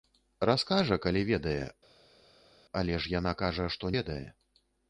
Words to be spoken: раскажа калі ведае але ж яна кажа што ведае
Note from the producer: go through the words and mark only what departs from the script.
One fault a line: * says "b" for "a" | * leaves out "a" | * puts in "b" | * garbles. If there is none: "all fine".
all fine